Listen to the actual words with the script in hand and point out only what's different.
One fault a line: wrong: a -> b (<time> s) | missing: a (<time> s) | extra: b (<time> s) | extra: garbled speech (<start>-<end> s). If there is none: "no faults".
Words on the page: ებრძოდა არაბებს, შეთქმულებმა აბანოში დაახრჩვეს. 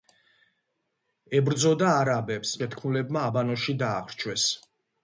no faults